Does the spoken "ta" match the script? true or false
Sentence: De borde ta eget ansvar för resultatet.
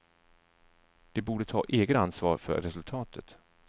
true